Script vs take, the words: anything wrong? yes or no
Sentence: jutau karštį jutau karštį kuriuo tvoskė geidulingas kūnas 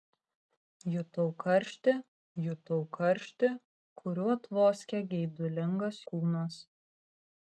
no